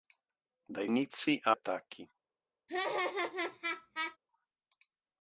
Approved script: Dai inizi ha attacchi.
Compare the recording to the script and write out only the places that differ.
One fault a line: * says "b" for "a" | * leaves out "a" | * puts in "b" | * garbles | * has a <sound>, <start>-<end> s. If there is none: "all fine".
* has a laugh, 2.7-4.2 s